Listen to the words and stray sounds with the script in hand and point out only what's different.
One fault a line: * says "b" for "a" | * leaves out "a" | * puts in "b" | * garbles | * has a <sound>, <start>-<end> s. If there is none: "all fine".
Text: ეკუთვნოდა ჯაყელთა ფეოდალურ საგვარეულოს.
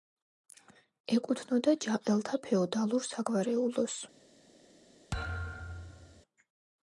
* has a thud, 5.1-6.2 s